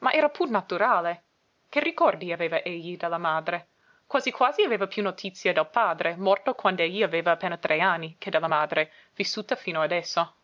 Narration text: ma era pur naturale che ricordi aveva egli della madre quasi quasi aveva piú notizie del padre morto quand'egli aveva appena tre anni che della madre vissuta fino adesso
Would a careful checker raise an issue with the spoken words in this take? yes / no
no